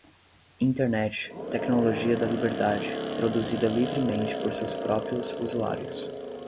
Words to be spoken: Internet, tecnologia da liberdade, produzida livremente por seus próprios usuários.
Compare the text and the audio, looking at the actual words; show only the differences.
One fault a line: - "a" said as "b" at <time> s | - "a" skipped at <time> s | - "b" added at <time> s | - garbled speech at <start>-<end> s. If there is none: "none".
none